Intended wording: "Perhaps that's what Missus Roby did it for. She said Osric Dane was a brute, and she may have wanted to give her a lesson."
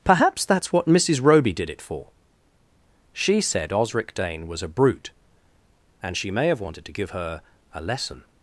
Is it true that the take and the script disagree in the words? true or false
false